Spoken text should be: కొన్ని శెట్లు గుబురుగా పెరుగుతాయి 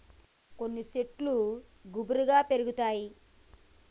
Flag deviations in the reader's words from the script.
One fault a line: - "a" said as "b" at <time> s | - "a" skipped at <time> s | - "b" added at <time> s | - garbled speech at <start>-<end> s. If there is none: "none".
none